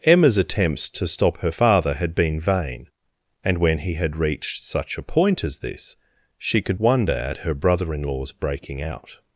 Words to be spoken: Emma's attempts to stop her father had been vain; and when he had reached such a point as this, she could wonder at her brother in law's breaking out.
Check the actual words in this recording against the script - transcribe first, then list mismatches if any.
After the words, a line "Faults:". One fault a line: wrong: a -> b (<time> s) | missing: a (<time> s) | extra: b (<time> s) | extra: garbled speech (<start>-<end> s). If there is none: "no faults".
Emma's attempts to stop her father had been vain; and when he had reached such a point as this, she could wonder at her brother in law's breaking out.
Faults:
no faults